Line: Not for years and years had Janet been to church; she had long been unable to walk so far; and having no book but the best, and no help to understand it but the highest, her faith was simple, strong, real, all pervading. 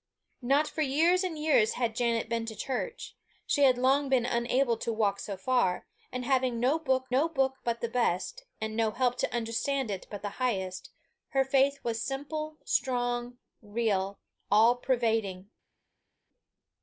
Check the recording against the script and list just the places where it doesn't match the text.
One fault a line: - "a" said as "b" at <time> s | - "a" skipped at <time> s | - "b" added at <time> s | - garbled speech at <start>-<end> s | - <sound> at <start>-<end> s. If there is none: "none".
- "no book" added at 7.1 s